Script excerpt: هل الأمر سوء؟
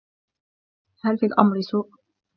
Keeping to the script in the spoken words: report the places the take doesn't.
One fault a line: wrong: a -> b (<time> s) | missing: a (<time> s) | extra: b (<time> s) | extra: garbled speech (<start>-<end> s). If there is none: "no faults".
extra: في (1.1 s)